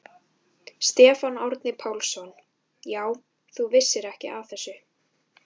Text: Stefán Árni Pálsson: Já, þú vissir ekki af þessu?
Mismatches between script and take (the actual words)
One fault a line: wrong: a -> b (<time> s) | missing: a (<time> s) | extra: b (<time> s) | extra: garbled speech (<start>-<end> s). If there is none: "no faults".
no faults